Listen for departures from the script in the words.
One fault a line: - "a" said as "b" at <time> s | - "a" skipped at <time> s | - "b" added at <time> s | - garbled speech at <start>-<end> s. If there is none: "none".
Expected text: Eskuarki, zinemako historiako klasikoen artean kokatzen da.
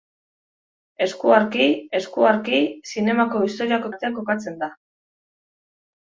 - "eskuarki" added at 2.0 s
- "klasikoen" skipped at 3.9 s